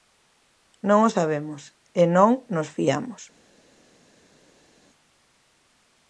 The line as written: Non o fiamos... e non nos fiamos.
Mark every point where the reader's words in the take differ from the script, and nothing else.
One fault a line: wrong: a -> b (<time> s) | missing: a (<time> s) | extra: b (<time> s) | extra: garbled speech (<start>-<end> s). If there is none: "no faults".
wrong: fiamos -> sabemos (1.2 s)